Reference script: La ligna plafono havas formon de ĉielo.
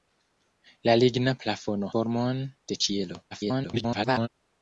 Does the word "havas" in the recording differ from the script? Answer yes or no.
yes